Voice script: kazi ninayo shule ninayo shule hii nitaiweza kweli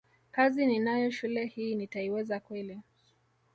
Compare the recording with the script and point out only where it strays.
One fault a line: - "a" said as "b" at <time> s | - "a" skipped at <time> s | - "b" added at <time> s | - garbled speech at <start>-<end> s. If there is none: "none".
- "ninayo shule" skipped at 1.4 s